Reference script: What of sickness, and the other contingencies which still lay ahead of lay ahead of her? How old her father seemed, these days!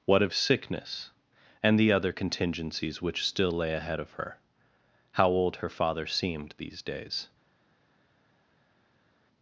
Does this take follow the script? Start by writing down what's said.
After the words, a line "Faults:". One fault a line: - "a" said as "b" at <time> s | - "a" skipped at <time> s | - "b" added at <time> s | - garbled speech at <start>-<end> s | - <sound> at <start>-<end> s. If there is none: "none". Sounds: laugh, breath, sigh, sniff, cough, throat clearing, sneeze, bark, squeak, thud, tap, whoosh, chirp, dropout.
What of sickness, and the other contingencies which still lay ahead of her? How old her father seemed, these days!
Faults:
- "lay ahead of" skipped at 4.1 s